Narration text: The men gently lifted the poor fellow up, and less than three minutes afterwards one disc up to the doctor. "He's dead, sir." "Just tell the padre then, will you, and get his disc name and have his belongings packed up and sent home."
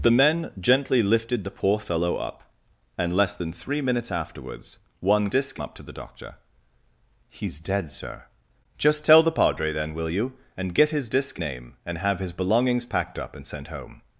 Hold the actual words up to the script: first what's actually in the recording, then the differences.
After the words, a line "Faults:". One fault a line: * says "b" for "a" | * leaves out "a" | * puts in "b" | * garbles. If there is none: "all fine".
The men gently lifted the poor fellow up, and less than three minutes afterwards one disc up to the doctor. "He's dead, sir." "Just tell the padre then, will you, and get his disc name and have his belongings packed up and sent home."
Faults:
all fine